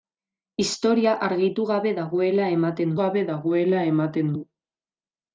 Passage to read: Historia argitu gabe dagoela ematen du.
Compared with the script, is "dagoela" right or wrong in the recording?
right